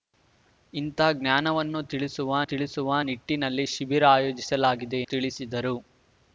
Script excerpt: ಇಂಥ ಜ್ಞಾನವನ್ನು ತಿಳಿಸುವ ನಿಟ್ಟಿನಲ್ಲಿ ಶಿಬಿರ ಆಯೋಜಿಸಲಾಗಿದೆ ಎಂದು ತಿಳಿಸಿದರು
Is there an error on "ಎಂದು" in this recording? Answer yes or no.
yes